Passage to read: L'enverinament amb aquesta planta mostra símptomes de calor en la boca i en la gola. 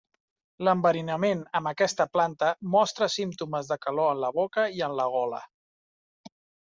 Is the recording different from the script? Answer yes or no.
no